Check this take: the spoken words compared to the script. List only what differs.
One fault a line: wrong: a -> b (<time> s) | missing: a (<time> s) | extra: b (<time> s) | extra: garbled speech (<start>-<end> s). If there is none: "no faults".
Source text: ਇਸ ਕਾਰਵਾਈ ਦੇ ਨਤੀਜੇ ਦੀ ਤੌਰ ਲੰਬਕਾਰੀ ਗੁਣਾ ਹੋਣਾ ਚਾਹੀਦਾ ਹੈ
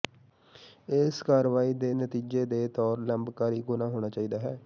wrong: ਦੀ -> ਦੇ (2.5 s)